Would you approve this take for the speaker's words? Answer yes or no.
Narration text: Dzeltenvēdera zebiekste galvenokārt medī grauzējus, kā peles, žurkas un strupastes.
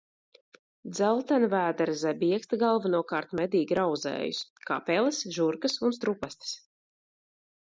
yes